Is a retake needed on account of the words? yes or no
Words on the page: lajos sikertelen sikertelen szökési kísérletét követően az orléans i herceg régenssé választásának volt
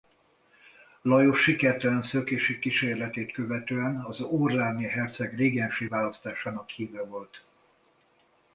yes